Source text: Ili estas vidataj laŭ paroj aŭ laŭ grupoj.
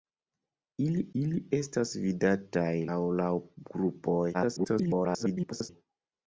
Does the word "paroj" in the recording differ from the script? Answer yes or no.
yes